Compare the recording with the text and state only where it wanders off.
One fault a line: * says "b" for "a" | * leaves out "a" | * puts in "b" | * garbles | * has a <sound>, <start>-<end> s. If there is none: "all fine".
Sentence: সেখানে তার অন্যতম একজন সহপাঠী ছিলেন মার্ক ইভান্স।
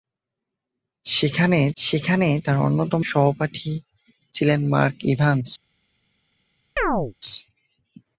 * puts in "সেখানে"
* leaves out "একজন"
* has a chirp, 6.8-7.1 s